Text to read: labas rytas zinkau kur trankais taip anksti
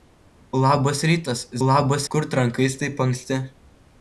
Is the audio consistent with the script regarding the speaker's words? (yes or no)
no